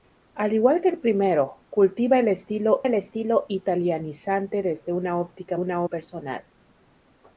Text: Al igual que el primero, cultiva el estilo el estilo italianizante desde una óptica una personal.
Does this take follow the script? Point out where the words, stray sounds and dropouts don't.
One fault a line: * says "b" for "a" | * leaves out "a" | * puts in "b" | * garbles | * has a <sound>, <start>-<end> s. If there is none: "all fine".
all fine